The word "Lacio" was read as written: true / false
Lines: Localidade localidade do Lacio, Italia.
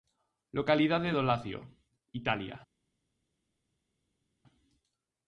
true